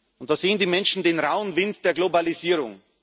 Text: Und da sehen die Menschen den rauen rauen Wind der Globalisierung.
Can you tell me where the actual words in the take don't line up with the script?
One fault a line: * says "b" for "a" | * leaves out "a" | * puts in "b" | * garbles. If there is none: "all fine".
* leaves out "rauen"